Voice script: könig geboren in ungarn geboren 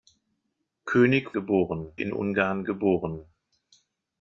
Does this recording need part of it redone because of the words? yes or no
no